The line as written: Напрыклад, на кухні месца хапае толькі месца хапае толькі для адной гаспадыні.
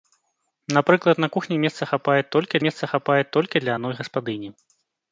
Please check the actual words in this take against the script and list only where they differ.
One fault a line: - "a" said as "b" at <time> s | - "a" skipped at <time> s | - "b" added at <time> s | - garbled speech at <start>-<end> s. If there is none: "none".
none